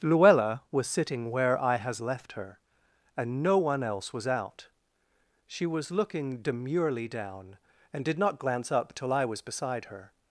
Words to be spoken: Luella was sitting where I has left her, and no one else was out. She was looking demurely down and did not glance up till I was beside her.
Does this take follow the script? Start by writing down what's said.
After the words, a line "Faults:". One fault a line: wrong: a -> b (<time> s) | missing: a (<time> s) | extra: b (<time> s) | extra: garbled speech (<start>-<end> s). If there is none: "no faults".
Luella was sitting where I has left her, and no one else was out. She was looking demurely down and did not glance up till I was beside her.
Faults:
no faults